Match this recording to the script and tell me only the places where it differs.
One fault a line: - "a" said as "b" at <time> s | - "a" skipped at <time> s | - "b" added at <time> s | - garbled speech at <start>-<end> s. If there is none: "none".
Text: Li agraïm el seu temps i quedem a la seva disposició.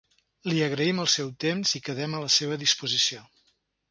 none